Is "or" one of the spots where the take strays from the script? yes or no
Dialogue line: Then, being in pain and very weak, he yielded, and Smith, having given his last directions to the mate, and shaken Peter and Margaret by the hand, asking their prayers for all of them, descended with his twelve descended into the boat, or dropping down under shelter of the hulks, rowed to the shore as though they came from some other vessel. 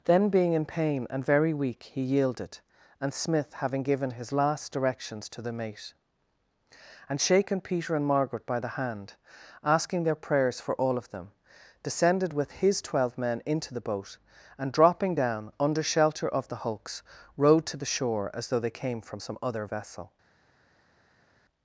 yes